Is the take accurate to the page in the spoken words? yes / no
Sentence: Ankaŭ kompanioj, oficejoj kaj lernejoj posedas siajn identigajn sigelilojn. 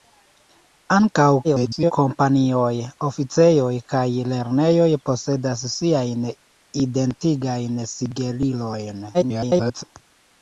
no